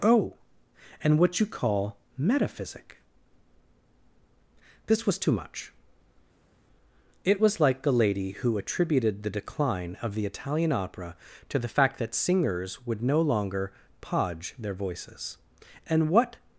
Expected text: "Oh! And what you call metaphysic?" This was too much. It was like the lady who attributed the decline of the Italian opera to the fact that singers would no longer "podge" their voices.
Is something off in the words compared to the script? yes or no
yes